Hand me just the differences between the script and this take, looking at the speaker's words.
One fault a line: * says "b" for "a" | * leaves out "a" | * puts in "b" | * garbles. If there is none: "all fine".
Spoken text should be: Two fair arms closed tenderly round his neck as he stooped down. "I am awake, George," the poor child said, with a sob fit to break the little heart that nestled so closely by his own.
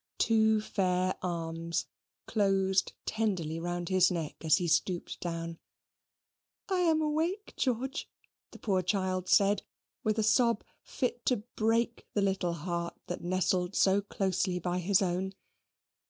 all fine